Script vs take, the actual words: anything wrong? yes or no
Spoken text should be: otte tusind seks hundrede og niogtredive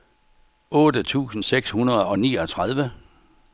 no